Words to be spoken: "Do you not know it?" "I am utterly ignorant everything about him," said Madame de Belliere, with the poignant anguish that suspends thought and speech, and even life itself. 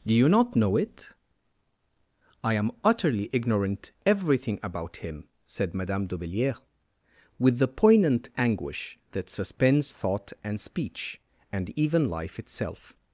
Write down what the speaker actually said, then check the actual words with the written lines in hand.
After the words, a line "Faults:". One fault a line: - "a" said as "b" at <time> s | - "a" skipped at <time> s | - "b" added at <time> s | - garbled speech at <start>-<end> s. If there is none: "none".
"Do you not know it?" "I am utterly ignorant everything about him," said Madame de Belliere, with the poignant anguish that suspends thought and speech, and even life itself.
Faults:
none